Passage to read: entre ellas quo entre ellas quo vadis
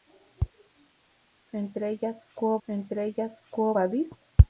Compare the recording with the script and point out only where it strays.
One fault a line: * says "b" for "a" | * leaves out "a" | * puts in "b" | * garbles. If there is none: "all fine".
all fine